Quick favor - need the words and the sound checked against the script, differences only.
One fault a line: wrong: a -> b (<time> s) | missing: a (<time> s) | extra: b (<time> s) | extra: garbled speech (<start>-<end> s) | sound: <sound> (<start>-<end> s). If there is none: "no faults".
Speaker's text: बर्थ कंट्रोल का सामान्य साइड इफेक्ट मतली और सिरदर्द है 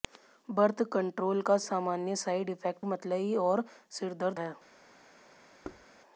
sound: thud (5.6-5.9 s)